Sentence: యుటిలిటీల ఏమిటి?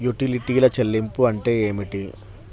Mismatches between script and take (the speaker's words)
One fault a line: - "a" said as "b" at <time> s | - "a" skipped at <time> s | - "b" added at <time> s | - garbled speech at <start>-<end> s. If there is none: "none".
- "చెల్లింపు అంటే" added at 0.7 s